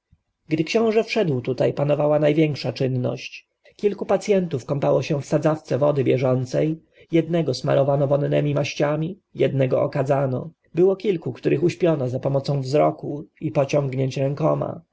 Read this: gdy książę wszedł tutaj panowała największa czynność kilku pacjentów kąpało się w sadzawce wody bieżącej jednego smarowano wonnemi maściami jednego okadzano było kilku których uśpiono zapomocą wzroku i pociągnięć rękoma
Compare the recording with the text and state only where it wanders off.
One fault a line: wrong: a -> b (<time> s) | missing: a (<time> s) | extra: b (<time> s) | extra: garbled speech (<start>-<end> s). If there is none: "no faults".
no faults